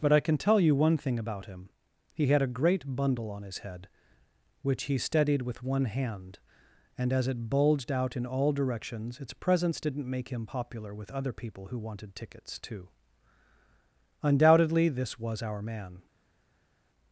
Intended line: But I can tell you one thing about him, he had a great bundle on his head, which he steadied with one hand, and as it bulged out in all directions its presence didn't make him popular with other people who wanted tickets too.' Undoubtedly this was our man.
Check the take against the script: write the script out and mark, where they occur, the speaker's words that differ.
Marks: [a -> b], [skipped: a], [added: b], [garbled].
But I can tell you one thing about him, he had a great bundle on his head, which he steadied with one hand, and as it bulged out in all directions its presence didn't make him popular with other people who wanted tickets too.' Undoubtedly this was our man.